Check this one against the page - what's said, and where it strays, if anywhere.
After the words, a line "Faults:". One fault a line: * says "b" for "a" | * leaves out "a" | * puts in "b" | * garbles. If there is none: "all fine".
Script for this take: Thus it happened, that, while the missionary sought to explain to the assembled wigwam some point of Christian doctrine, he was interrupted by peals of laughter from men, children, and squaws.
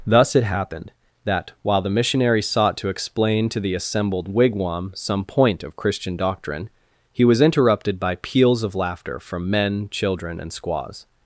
Thus it happened, that, while the missionary sought to explain to the assembled wigwam some point of Christian doctrine, he was interrupted by peals of laughter from men, children, and squaws.
Faults:
all fine